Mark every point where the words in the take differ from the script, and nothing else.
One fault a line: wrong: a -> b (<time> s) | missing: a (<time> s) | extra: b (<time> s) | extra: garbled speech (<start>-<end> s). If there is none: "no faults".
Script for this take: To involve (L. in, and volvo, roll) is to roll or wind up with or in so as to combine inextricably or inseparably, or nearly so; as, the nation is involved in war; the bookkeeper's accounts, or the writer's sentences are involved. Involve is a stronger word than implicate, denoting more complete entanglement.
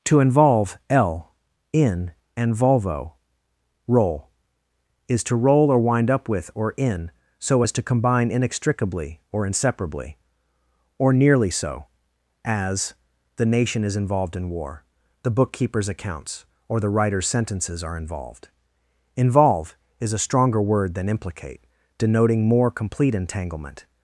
no faults